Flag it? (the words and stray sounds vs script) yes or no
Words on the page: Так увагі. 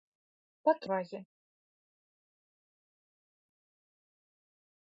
no